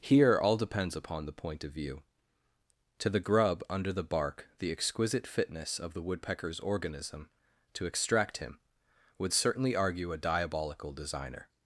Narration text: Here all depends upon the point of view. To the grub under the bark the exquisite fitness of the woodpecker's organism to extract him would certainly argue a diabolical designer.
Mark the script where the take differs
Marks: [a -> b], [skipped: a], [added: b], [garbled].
Here all depends upon the point of view. To the grub under the bark the exquisite fitness of the woodpecker's organism to extract him would certainly argue a diabolical designer.